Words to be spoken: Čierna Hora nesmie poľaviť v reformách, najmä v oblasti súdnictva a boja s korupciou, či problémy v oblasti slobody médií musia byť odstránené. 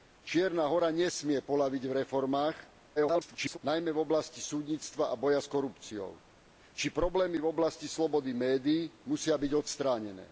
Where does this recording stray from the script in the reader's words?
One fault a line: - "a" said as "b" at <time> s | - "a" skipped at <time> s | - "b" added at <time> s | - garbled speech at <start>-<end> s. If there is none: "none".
- garbled speech at 3.0-3.6 s